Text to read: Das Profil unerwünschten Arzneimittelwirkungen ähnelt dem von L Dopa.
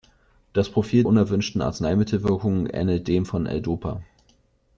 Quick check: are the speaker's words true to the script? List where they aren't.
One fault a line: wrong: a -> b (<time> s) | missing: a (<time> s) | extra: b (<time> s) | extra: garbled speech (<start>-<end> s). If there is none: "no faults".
no faults